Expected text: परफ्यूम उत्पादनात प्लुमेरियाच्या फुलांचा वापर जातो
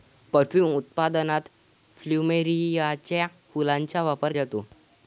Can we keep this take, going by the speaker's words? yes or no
yes